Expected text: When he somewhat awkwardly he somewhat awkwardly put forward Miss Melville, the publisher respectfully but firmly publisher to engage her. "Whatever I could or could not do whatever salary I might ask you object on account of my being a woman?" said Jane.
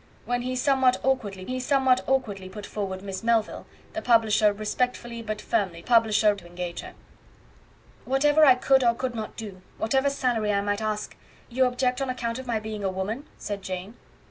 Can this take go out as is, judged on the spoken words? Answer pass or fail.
pass